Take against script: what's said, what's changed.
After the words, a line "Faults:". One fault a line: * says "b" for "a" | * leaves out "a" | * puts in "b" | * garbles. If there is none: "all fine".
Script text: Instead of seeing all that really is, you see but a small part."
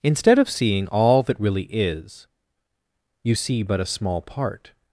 Instead of seeing all that really is, you see but a small part."
Faults:
all fine